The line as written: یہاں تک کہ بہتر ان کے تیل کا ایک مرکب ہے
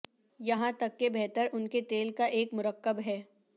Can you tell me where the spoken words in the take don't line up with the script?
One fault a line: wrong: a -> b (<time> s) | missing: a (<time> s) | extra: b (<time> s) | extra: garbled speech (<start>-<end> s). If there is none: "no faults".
no faults